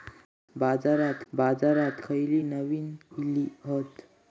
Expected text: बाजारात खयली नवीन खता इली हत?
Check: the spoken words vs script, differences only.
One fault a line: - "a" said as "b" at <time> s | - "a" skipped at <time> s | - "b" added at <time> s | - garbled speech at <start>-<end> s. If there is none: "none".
- "बाजारात" added at 1.3 s
- "खता" skipped at 2.9 s